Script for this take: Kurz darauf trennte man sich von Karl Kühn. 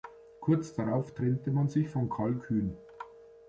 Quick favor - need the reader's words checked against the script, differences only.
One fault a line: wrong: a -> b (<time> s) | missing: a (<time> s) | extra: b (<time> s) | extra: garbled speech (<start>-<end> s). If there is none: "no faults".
no faults